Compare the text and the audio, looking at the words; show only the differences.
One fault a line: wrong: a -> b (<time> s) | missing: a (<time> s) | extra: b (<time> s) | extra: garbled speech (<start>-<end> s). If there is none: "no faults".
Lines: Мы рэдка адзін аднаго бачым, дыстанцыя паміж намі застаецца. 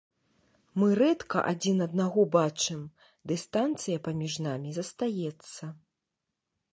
no faults